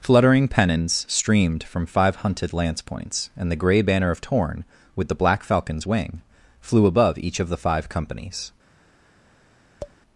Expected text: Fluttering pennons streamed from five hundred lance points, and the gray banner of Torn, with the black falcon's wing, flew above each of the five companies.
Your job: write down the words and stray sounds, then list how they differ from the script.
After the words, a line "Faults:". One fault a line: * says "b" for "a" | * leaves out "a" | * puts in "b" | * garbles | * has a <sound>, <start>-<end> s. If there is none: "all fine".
Fluttering pennons streamed from five hunted lance points, and the gray banner of Torn, with the black falcon's wing, flew above each of the five companies.
Faults:
* says "hunted" for "hundred"
* has a tap, 9.8-10.0 s